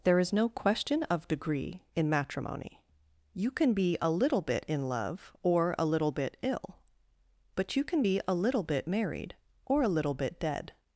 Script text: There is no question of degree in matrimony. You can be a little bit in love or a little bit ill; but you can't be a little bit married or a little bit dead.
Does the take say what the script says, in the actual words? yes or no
no